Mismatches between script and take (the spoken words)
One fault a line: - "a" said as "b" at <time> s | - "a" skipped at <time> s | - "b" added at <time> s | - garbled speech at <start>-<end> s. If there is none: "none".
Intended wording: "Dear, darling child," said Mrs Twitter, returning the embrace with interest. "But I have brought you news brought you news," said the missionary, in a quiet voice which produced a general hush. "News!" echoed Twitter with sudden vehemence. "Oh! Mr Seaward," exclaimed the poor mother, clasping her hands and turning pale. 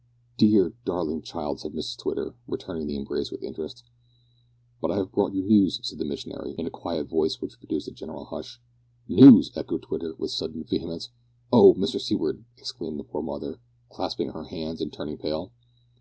- "brought you news" skipped at 5.8 s